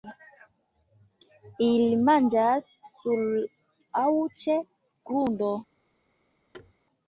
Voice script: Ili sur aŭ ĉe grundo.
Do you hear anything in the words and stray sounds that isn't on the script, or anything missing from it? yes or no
yes